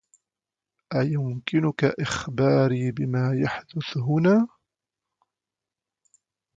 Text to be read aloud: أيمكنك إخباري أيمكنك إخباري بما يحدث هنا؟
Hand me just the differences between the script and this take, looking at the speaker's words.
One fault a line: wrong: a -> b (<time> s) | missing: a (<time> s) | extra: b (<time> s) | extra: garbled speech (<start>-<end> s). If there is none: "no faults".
missing: أيمكنك إخباري (2.9 s)